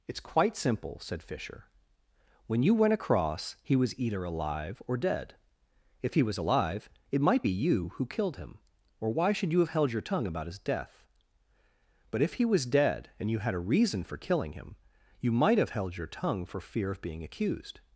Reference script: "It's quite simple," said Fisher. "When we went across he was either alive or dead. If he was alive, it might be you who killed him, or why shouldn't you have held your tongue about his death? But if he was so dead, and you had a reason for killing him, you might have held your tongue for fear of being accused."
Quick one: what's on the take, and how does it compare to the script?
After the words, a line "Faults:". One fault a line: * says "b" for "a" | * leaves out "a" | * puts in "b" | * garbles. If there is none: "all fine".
"It's quite simple," said Fisher. "When you went across he was either alive or dead. If he was alive, it might be you who killed him, or why should you have held your tongue about his death? But if he was dead, and you had a reason for killing him, you might have held your tongue for fear of being accused."
Faults:
* says "you" for "we"
* says "should" for "shouldn't"
* leaves out "so"